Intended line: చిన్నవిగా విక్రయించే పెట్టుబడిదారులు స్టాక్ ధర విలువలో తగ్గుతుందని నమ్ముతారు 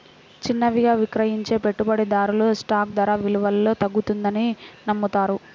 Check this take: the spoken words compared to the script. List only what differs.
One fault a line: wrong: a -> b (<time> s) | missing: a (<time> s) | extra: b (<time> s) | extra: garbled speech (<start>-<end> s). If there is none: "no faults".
no faults